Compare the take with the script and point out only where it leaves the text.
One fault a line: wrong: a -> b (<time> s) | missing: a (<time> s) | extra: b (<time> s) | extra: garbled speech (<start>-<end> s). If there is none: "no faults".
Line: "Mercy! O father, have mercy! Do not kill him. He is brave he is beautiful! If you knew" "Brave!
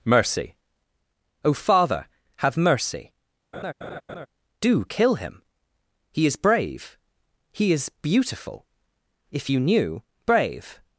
missing: not (4.9 s)